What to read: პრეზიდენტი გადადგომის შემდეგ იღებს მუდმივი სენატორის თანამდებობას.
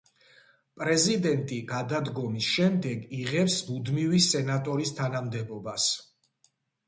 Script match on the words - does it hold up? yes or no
yes